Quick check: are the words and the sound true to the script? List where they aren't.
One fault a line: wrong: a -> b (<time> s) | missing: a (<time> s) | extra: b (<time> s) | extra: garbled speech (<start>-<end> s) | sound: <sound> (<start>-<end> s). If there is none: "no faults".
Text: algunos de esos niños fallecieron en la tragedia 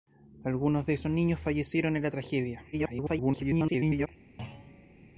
extra: garbled speech (2.7-4.1 s)
sound: thud (4.4-5.0 s)